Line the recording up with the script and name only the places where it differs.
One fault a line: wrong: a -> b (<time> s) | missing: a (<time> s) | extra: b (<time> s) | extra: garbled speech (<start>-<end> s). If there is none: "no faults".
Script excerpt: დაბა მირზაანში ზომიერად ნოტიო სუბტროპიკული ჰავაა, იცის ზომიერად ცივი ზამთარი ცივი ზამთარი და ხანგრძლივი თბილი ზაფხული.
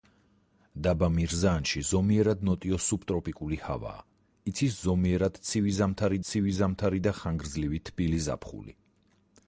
no faults